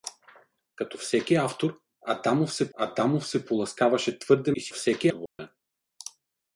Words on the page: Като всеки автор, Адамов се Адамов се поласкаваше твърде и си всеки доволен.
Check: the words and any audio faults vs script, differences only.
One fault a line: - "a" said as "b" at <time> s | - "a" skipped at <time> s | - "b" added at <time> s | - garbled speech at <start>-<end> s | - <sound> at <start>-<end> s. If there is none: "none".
- dropout at 5.3-5.4 s